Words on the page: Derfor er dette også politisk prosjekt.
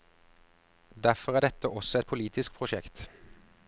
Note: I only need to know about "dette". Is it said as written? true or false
true